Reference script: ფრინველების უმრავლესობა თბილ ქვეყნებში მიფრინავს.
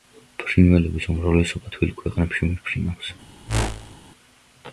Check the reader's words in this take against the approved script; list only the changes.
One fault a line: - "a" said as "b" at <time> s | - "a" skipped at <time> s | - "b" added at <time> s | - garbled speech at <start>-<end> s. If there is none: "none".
none